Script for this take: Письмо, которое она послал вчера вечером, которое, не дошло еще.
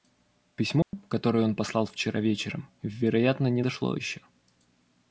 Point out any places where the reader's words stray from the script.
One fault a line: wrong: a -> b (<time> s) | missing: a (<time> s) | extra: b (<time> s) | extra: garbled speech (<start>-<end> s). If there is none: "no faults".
wrong: она -> он (1.4 s)
wrong: которое -> вероятно (2.8 s)